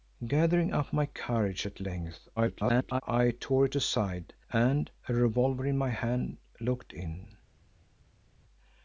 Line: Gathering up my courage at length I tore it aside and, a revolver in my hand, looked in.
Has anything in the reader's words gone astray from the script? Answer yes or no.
yes